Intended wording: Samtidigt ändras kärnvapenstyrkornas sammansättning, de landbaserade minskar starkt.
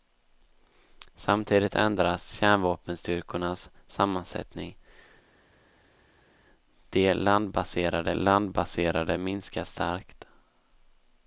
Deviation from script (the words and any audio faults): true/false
true